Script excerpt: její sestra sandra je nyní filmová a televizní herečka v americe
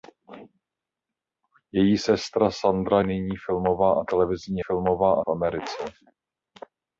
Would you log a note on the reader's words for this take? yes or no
yes